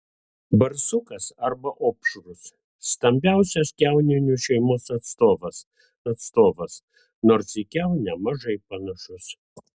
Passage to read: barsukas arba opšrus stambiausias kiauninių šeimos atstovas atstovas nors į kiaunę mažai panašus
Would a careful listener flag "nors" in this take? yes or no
no